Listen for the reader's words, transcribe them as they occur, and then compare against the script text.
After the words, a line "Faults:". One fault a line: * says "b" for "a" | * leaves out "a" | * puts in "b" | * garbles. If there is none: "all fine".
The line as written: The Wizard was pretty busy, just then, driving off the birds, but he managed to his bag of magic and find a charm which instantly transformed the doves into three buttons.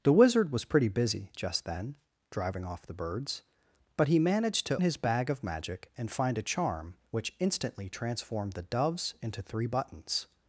The Wizard was pretty busy, just then, driving off the birds, but he managed to his bag of magic and find a charm which instantly transformed the doves into three buttons.
Faults:
all fine